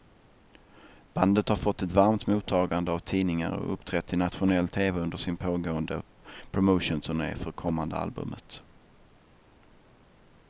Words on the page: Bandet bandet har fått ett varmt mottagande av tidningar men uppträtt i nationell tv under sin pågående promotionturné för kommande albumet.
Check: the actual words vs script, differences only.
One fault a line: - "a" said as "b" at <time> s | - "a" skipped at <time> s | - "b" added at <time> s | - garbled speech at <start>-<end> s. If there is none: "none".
- "bandet" skipped at 1.5 s
- "men" said as "och" at 3.5 s